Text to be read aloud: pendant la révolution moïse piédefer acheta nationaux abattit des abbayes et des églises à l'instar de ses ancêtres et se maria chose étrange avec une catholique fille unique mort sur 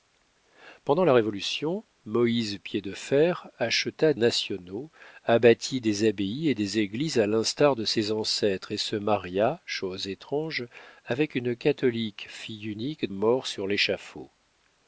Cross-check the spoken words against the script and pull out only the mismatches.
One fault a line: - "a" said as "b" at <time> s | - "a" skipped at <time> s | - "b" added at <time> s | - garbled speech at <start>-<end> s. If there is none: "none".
none